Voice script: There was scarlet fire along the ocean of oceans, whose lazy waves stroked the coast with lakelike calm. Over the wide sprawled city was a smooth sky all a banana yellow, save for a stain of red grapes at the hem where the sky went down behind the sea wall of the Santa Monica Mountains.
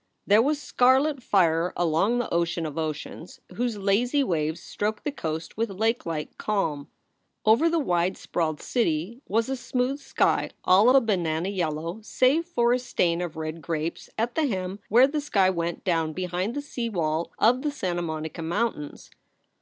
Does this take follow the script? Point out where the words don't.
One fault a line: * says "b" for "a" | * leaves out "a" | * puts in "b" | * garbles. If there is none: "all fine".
all fine